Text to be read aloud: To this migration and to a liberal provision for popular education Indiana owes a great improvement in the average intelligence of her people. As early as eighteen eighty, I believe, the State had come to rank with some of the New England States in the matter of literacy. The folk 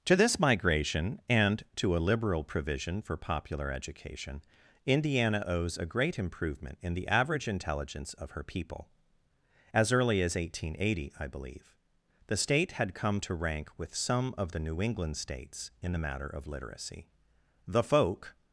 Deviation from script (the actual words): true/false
false